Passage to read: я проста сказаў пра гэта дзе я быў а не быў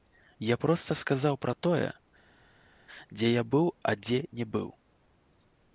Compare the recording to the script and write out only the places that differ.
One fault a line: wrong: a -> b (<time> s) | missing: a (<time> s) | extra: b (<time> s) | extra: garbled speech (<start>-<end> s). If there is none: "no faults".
wrong: гэта -> тое (1.7 s)
extra: дзе (4.1 s)